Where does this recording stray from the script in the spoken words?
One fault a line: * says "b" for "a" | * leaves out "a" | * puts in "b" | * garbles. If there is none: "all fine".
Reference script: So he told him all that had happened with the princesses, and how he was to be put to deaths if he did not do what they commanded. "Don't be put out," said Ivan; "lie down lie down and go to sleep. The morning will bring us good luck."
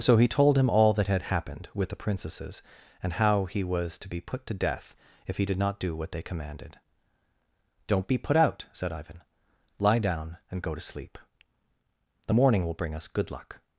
* says "death" for "deaths"
* leaves out "lie down"